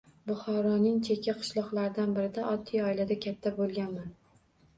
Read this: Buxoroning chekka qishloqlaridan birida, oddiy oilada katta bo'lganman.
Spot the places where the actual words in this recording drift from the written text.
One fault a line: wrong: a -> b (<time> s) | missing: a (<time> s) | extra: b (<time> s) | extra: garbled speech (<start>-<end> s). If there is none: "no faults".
no faults